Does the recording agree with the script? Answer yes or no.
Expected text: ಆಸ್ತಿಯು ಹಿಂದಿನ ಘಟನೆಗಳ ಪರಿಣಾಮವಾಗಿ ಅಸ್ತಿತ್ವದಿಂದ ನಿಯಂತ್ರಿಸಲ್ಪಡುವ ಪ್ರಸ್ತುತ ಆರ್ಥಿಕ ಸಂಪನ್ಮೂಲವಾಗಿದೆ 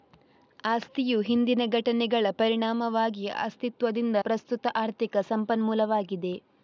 no